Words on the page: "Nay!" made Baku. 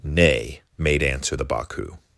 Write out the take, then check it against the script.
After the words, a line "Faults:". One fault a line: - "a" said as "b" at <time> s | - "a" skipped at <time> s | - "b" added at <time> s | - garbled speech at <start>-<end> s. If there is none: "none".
"Nay!" made answer the Baku.
Faults:
- "answer the" added at 1.0 s